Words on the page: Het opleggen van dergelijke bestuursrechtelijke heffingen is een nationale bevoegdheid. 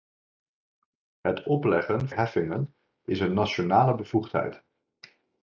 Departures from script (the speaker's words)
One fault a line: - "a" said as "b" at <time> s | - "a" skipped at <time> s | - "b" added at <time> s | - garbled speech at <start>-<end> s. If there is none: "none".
- "van dergelijke bestuursrechtelijke" skipped at 2.1 s